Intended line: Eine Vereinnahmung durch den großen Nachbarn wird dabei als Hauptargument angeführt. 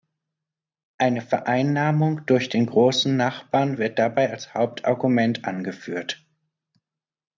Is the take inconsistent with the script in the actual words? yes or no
no